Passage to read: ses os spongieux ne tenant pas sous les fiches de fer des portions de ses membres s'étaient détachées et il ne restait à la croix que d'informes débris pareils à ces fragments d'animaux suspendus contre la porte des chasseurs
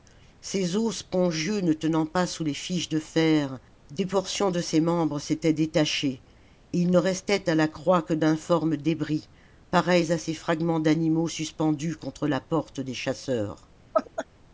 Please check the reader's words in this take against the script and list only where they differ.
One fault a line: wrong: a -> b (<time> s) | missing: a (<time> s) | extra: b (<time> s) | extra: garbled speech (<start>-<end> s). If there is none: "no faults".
no faults